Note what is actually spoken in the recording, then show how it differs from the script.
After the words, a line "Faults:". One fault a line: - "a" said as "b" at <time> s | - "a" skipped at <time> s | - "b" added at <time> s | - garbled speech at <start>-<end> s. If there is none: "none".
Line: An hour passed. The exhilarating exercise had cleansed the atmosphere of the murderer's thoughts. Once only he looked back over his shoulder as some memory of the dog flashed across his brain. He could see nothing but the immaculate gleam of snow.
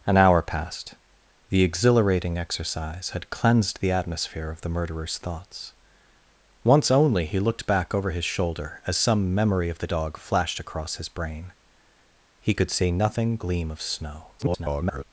An hour passed. The exhilarating exercise had cleansed the atmosphere of the murderer's thoughts. Once only he looked back over his shoulder as some memory of the dog flashed across his brain. He could see nothing gleam of snow. [garbled]
Faults:
- "but the immaculate" skipped at 13.4 s
- garbled speech at 14.4-15.0 s